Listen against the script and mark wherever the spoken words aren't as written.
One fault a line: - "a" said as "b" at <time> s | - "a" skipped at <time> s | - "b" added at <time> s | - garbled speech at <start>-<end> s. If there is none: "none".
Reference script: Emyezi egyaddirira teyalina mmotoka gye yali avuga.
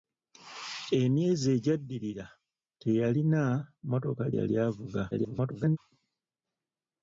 - "gye" skipped at 4.2 s
- garbled speech at 5.1-5.8 s